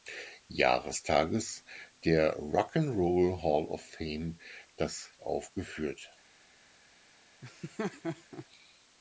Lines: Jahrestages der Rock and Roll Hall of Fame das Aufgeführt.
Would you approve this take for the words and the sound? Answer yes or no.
no